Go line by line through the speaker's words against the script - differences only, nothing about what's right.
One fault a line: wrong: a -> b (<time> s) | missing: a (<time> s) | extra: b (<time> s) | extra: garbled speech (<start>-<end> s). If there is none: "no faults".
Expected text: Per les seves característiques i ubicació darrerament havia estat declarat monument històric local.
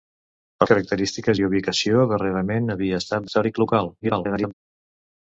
missing: les seves (0.7 s)
missing: declarat monument (3.3 s)
extra: garbled speech (4.0-4.5 s)